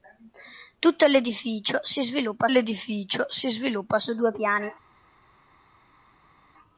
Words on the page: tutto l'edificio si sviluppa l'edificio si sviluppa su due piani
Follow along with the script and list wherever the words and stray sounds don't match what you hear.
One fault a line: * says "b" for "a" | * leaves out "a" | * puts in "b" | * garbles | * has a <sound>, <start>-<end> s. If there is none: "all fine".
all fine